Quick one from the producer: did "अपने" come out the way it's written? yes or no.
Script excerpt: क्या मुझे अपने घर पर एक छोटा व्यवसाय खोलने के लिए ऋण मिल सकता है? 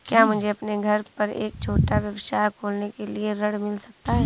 yes